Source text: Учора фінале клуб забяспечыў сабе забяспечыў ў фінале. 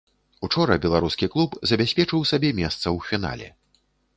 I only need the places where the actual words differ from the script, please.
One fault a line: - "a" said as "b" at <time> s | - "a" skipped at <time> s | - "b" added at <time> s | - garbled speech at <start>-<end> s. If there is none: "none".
- "фінале" said as "беларускі" at 0.8 s
- "забяспечыў" said as "месца" at 2.6 s